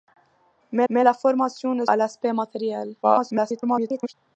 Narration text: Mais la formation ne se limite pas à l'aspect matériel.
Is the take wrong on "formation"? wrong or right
right